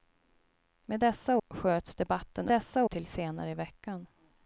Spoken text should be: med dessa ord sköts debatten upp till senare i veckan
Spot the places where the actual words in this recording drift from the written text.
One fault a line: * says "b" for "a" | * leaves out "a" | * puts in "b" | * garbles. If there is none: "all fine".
* leaves out "ord"
* says "dessa" for "upp"